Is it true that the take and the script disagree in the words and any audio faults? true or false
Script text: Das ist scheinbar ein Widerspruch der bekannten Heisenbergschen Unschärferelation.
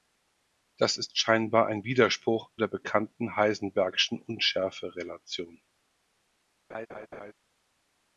true